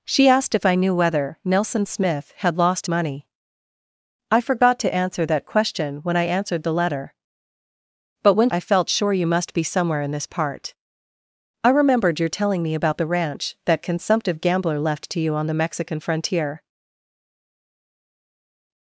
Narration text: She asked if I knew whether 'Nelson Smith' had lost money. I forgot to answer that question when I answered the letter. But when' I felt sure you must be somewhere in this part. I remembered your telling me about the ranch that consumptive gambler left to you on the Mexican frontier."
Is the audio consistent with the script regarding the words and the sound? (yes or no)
yes